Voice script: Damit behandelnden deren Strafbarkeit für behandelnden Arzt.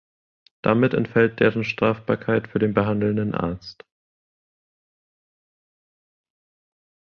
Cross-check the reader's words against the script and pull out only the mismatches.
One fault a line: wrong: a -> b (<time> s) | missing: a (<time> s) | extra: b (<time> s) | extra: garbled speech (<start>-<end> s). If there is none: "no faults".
wrong: behandelnden -> entfällt (0.9 s)
extra: den (2.6 s)